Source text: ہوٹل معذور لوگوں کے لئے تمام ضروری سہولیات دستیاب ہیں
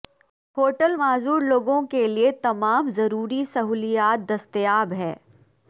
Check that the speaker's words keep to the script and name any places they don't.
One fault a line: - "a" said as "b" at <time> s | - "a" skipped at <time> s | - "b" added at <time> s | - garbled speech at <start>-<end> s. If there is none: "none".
none